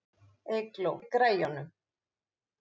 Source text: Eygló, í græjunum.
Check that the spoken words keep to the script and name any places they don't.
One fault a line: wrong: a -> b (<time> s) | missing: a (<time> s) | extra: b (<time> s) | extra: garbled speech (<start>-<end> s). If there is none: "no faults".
no faults